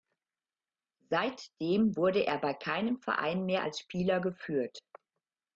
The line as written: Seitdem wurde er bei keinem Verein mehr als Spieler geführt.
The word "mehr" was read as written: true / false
true